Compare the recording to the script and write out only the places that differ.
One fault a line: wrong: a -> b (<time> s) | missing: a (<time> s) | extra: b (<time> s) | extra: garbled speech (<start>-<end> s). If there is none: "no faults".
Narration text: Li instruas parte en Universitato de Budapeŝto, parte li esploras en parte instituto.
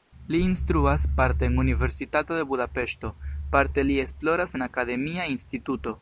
wrong: parte -> akademia (4.7 s)